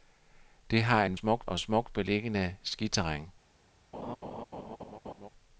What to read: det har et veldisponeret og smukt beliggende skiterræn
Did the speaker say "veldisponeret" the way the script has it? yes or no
no